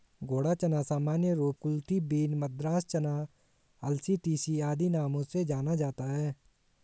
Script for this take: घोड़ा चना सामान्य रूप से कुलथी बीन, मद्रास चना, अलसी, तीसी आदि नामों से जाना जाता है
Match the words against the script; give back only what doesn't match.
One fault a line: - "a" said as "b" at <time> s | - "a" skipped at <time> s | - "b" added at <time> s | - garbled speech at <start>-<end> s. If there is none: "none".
- "से" skipped at 1.6 s